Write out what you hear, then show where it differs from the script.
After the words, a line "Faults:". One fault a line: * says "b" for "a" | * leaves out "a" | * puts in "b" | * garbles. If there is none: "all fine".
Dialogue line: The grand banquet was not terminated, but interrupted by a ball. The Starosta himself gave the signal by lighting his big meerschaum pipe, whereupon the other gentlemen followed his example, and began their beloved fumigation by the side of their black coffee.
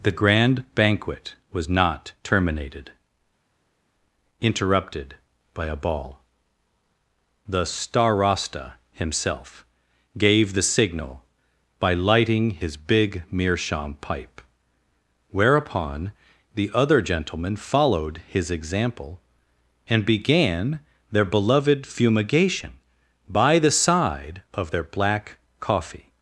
The grand banquet was not terminated, interrupted by a ball. The Starosta himself gave the signal by lighting his big meerschaum pipe, whereupon the other gentlemen followed his example, and began their beloved fumigation by the side of their black coffee.
Faults:
* leaves out "but"